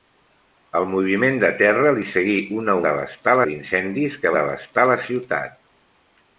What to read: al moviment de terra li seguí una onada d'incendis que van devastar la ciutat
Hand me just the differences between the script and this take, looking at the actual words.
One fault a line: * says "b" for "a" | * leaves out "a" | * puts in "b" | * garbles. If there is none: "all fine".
* says "devastar" for "onada"
* leaves out "van"